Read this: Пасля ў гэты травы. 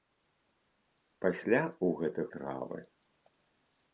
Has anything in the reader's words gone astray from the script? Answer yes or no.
no